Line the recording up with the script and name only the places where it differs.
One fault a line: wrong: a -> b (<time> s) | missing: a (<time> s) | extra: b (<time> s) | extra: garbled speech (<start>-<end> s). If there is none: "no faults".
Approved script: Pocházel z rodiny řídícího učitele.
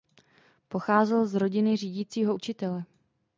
no faults